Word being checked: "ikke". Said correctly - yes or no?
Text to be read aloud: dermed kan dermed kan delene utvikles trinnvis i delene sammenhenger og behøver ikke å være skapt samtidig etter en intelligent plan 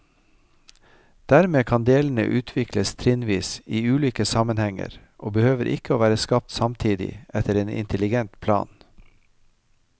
yes